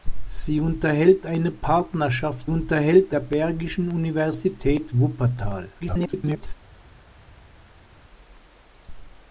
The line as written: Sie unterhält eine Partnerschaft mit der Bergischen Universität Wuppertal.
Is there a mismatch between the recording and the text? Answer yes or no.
yes